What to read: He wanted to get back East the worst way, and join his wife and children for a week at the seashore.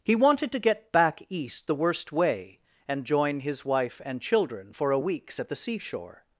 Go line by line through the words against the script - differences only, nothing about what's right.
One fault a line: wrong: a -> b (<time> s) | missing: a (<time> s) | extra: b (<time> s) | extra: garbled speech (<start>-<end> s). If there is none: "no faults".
wrong: week -> weeks (5.0 s)